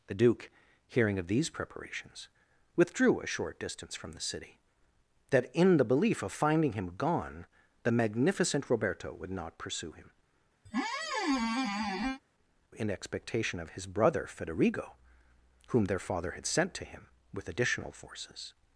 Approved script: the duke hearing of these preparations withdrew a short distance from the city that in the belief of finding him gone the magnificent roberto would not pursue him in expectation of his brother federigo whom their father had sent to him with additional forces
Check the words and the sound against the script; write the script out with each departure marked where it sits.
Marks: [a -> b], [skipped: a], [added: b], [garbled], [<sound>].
the duke hearing of these preparations withdrew a short distance from the city that in the belief of finding him gone the magnificent roberto would not pursue him [squeak] in expectation of his brother federigo whom their father had sent to him with additional forces